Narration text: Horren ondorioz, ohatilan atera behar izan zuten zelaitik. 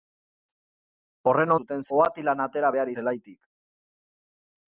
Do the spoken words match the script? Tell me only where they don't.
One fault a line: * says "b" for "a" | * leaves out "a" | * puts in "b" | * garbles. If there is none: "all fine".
* says "zuten" for "ondorioz"
* leaves out "izan zuten"